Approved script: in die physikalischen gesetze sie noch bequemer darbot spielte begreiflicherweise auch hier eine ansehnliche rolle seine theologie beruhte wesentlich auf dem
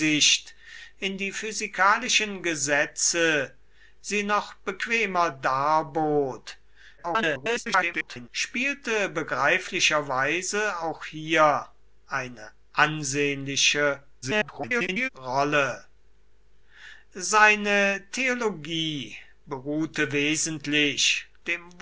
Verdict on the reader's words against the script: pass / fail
fail